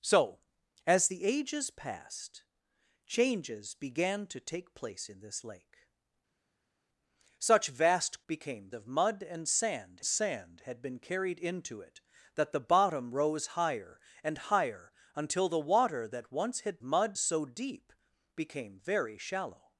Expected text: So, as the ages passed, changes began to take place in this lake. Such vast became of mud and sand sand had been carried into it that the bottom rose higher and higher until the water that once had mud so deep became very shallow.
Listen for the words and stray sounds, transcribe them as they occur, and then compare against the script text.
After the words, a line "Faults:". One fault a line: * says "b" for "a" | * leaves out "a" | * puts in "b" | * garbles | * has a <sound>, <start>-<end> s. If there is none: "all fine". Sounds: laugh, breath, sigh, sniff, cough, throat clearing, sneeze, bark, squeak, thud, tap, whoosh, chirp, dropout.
So, as the ages passed, changes began to take place in this lake. Such vast became of mud and sand sand had been carried into it that the bottom rose higher and higher until the water that once had mud so deep became very shallow.
Faults:
all fine